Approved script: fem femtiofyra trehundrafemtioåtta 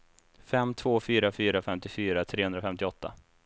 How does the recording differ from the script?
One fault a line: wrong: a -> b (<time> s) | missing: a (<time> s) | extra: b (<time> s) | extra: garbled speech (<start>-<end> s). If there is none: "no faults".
extra: två fyra fyra (0.7 s)